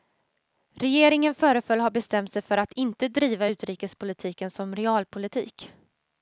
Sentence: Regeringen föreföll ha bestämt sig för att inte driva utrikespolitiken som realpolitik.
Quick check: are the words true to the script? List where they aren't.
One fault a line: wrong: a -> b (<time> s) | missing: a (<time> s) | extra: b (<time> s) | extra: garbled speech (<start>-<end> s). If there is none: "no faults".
no faults